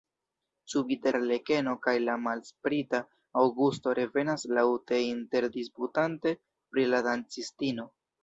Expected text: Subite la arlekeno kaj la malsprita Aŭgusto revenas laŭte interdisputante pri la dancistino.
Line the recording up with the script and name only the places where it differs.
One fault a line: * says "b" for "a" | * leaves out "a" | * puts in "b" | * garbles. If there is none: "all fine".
* leaves out "la"